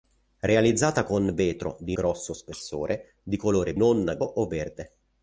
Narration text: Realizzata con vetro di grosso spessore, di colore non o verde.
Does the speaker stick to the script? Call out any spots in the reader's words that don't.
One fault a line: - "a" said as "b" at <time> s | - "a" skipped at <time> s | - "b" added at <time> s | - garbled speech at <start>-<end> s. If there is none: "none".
none